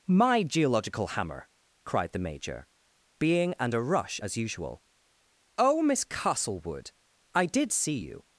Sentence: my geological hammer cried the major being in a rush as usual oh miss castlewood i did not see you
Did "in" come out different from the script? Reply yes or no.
yes